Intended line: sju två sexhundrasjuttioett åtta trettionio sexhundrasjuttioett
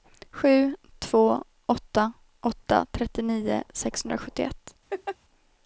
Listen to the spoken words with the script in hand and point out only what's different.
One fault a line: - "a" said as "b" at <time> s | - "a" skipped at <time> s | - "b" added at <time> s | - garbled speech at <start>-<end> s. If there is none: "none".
- "sexhundrasjuttioett" said as "åtta" at 1.6 s